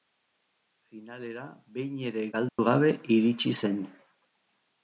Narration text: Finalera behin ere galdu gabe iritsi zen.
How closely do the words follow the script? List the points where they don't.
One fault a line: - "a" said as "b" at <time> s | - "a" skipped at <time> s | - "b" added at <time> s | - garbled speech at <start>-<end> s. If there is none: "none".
none